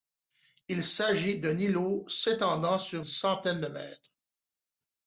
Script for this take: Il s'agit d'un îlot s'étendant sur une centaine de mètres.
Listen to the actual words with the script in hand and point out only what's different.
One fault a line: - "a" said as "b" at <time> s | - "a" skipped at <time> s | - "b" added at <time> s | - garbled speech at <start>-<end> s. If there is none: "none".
- "une" skipped at 3.1 s